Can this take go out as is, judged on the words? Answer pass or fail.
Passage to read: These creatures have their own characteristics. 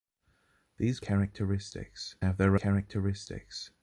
fail